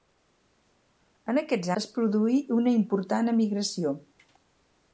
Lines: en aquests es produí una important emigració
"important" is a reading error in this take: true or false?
false